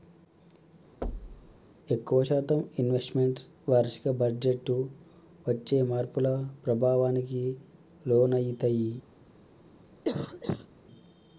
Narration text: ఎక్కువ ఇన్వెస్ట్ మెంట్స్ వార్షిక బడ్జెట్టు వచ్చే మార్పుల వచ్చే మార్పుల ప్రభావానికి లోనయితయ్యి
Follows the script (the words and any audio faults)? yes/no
no